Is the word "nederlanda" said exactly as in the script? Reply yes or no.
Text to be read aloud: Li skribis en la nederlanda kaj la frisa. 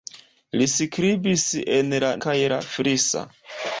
no